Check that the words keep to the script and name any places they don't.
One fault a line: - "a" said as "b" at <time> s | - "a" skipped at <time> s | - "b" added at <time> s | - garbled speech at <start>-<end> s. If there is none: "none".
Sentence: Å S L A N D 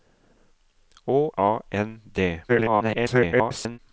- "S L" skipped at 1.3 s
- garbled speech at 2.5-3.8 s